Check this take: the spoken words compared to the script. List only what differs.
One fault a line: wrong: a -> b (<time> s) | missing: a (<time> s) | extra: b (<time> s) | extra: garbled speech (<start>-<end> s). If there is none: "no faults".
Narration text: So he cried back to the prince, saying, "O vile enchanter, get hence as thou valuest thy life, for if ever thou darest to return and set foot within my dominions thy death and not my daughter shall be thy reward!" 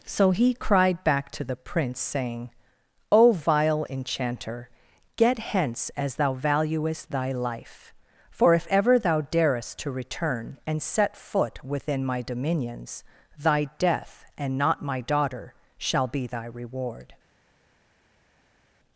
no faults